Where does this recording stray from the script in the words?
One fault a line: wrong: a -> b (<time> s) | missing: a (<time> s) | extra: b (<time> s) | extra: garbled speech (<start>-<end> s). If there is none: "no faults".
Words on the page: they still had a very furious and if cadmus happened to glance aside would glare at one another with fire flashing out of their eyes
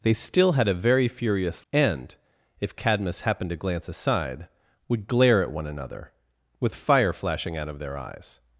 no faults